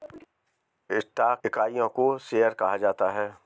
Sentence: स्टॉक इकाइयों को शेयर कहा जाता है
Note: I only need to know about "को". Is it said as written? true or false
true